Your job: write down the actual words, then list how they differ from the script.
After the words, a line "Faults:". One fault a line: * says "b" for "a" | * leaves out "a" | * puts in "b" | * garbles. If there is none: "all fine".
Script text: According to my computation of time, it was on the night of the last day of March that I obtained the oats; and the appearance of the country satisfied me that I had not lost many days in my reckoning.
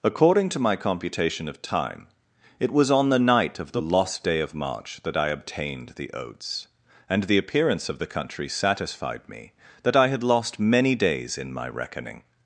According to my computation of time, it was on the night of the lost day of March that I obtained the oats; and the appearance of the country satisfied me that I had lost many days in my reckoning.
Faults:
* says "lost" for "last"
* leaves out "not"